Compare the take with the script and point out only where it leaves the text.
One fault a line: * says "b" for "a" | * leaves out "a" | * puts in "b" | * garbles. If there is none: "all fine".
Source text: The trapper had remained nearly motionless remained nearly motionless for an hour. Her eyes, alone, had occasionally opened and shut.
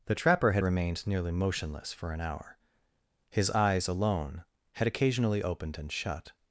* leaves out "remained nearly motionless"
* says "His" for "Her"